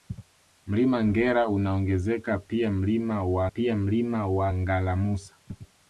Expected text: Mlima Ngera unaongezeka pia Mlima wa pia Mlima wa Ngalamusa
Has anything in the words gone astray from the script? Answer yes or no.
no